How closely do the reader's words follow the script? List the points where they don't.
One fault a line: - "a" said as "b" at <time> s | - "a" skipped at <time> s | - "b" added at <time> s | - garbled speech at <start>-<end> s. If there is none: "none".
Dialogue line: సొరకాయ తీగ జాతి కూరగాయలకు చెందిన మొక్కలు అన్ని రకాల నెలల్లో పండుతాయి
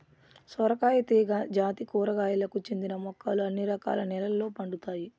none